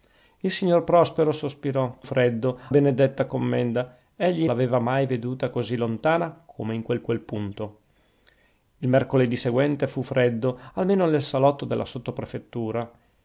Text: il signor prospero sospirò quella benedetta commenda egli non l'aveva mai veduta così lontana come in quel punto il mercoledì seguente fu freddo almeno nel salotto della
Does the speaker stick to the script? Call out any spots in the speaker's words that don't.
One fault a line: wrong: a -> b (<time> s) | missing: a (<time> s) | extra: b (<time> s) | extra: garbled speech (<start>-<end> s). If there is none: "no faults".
wrong: quella -> freddo (2.0 s)
missing: non (4.5 s)
extra: quel (7.0 s)